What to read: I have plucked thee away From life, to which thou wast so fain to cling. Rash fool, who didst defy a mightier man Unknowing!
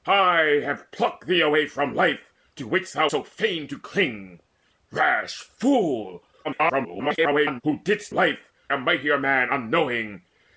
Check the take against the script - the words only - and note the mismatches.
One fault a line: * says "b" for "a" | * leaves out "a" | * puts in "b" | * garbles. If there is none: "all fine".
* leaves out "wast"
* garbles
* says "life" for "defy"